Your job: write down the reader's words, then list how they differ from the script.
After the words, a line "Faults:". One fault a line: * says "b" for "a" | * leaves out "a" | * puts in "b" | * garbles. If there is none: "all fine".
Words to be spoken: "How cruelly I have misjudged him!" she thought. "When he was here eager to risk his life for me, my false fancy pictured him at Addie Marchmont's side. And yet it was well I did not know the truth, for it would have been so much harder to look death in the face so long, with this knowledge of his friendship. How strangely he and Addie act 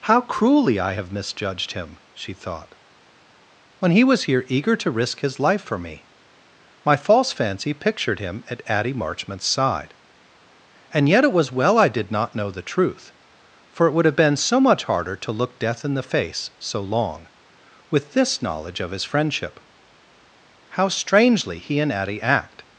"How cruelly I have misjudged him!" she thought. "When he was here eager to risk his life for me, my false fancy pictured him at Addie Marchmont's side. And yet it was well I did not know the truth, for it would have been so much harder to look death in the face so long, with this knowledge of his friendship. How strangely he and Addie act
Faults:
all fine